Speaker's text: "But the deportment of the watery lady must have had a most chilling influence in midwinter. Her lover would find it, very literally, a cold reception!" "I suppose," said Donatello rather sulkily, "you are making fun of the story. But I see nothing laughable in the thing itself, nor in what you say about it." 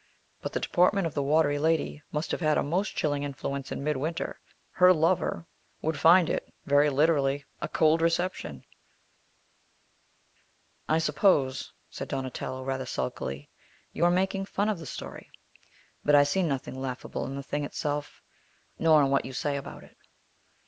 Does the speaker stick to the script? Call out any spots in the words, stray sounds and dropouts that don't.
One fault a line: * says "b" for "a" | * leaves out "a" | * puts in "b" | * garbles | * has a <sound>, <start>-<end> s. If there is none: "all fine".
all fine